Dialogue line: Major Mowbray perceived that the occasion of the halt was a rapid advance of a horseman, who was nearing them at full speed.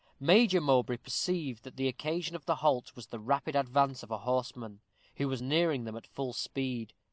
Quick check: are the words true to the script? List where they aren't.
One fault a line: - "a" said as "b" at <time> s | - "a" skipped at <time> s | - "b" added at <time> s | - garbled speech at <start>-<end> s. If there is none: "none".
- "a" said as "the" at 3.0 s